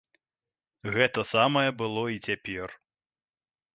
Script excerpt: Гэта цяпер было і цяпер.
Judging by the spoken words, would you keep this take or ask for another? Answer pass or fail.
fail